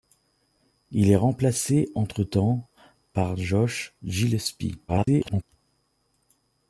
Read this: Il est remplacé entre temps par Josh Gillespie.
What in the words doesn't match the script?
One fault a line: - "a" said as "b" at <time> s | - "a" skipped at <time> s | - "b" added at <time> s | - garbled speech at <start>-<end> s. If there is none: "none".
- garbled speech at 4.9-5.4 s